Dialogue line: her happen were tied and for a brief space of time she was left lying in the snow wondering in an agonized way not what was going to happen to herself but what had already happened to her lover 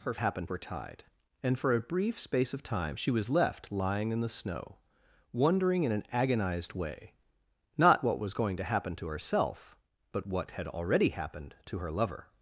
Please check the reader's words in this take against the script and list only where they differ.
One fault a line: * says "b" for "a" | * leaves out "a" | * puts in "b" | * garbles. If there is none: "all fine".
all fine